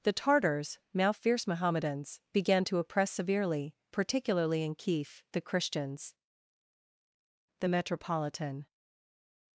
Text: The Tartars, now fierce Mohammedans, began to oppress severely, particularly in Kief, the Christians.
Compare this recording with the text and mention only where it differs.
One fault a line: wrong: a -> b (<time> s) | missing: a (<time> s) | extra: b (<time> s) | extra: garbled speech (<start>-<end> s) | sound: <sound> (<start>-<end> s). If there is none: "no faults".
extra: The metropolitan (7.6 s)